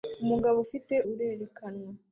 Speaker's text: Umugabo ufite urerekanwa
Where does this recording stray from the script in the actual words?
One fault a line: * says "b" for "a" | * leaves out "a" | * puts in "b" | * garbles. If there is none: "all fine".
all fine